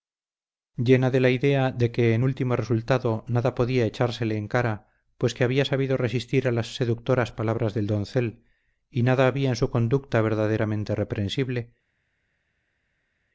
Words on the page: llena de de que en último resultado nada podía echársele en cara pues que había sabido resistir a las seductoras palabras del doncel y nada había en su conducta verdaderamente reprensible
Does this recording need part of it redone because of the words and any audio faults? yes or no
yes